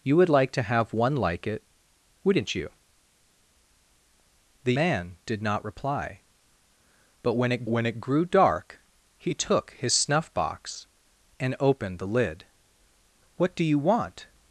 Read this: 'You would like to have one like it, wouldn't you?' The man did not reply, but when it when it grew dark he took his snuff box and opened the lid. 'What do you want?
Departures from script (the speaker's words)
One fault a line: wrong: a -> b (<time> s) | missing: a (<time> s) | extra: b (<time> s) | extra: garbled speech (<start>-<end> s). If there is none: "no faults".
no faults